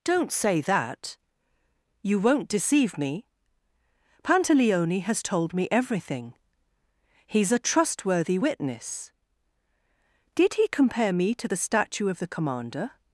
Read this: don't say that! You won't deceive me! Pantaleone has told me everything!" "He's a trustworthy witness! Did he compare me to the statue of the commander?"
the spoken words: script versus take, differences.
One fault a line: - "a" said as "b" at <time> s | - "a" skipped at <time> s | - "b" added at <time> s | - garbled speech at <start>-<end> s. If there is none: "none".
none